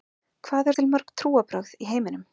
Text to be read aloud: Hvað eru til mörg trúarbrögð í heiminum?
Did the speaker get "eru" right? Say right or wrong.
wrong